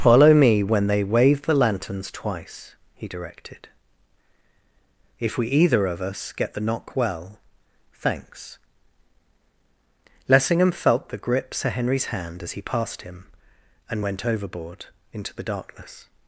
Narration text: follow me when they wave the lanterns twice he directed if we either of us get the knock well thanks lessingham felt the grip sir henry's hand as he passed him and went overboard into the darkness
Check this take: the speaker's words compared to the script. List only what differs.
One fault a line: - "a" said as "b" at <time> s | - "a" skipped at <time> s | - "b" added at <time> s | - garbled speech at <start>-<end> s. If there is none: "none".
none